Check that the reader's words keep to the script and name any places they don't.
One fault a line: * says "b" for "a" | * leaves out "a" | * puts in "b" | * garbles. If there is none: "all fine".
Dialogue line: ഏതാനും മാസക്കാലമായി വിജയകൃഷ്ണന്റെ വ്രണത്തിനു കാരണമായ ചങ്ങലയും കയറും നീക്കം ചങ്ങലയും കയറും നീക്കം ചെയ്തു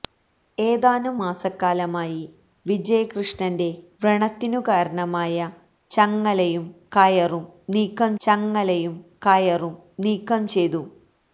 all fine